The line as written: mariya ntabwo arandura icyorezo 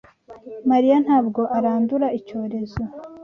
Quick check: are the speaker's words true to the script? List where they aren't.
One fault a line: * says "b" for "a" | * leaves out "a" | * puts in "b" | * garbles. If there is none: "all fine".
all fine